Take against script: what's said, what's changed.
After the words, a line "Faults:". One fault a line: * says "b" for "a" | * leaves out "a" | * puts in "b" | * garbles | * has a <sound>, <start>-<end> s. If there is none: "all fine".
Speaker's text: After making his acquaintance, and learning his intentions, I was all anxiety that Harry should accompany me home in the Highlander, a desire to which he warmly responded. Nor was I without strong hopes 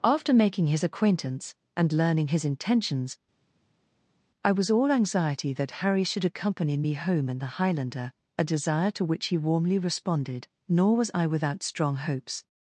After making his acquaintance, and learning his intentions, I was all anxiety that Harry should accompany me home in the Highlander, a desire to which he warmly responded. Nor was I without strong hopes
Faults:
all fine